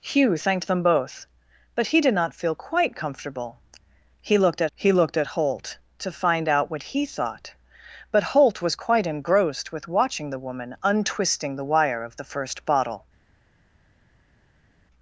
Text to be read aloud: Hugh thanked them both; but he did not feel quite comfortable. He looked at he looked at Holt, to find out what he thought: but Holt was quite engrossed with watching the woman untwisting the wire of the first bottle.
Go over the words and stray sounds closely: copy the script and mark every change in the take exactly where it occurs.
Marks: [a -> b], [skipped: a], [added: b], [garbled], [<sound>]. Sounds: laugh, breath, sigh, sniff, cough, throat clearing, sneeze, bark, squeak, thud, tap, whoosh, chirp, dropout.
Hugh thanked them both; but he did not feel quite comfortable. He looked at he looked at Holt, to find out what he thought: but Holt was quite engrossed with watching the woman untwisting the wire of the first bottle.